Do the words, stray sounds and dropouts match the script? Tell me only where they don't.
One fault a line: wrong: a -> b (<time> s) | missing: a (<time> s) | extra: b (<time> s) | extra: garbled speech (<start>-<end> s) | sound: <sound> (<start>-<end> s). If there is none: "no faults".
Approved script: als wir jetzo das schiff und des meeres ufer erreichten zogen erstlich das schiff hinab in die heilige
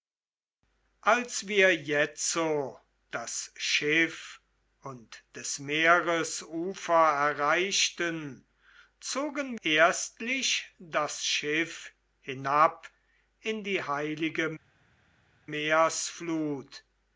no faults